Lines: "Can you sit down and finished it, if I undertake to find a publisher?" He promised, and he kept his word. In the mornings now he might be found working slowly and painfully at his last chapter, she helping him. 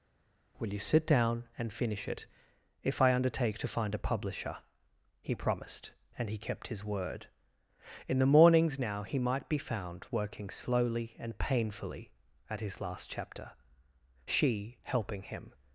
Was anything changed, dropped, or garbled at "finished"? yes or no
yes